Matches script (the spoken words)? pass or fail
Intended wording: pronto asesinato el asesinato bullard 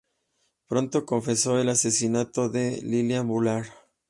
fail